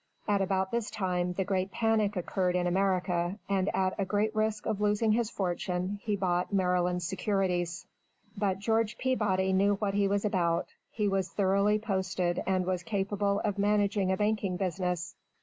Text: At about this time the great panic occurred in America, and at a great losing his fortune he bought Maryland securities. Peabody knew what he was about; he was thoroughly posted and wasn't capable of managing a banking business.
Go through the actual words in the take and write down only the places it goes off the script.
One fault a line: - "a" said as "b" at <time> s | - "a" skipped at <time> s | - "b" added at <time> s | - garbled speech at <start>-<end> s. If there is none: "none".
- "risk of" added at 4.3 s
- "But George" added at 8.3 s
- "wasn't" said as "was" at 12.7 s